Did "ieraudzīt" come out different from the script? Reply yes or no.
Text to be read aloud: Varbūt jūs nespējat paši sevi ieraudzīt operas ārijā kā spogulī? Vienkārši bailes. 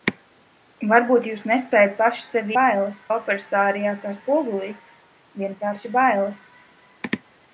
yes